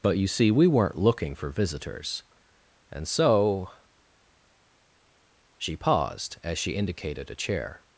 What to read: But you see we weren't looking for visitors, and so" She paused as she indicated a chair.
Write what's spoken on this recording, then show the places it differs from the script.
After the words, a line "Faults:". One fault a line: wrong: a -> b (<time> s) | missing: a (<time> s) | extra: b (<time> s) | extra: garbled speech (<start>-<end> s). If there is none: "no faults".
But you see we weren't looking for visitors, and so" She paused as she indicated a chair.
Faults:
no faults